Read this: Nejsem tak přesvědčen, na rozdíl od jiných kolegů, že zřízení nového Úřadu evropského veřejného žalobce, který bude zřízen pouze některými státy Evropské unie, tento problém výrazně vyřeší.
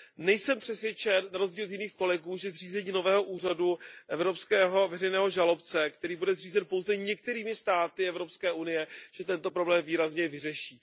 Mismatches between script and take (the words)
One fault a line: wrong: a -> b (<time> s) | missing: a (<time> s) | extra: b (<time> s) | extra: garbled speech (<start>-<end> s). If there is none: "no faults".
missing: tak (0.6 s)